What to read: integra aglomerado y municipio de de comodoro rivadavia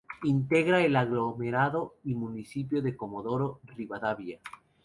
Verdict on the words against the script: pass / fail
fail